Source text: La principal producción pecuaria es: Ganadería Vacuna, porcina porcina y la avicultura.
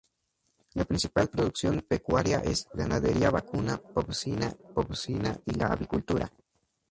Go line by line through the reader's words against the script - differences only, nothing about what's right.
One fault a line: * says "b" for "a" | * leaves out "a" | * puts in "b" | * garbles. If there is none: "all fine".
all fine